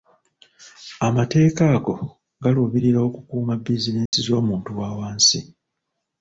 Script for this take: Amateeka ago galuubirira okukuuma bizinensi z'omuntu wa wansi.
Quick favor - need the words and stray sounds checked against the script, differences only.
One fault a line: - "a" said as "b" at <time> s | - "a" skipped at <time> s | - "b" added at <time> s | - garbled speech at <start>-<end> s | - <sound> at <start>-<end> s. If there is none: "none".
- dropout at 4.1-4.1 s